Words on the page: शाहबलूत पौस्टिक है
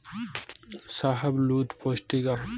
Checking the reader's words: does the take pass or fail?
pass